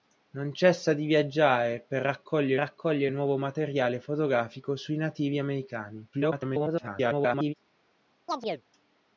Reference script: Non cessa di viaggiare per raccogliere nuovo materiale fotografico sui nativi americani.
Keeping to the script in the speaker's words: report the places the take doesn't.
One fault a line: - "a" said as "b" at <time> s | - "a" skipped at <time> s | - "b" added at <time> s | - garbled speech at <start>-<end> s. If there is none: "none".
- "raccogliere" added at 2.5 s
- garbled speech at 6.1-7.5 s